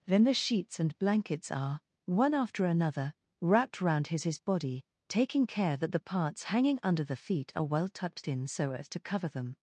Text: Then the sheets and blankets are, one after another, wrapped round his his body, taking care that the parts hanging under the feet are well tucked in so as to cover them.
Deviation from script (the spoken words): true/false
false